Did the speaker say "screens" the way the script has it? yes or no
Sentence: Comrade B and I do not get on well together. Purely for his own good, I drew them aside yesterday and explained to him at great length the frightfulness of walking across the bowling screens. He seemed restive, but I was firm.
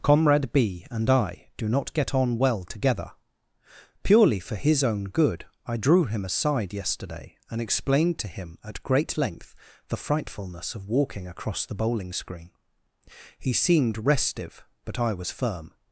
no